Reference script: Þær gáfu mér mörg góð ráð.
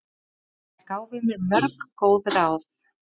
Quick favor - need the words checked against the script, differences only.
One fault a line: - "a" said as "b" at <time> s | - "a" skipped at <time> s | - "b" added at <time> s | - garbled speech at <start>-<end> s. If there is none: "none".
none